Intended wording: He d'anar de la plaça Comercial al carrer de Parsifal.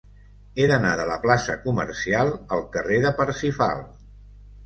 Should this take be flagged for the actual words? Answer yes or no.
no